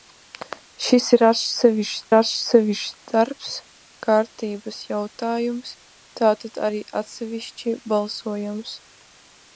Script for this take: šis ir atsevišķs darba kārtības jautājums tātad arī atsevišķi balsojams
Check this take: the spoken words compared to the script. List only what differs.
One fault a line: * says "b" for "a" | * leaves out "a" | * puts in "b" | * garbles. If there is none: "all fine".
* puts in "atsevišķs"